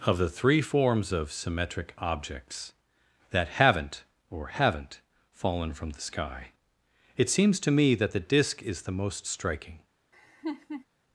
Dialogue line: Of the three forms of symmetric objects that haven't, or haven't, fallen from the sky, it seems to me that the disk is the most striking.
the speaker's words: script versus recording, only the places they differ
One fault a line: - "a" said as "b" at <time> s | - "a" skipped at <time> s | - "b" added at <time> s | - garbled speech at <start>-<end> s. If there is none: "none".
none